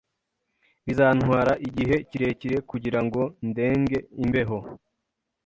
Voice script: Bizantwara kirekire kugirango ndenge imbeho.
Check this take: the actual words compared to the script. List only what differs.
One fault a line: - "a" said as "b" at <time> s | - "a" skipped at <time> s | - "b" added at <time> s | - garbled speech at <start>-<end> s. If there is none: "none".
- "igihe" added at 1.7 s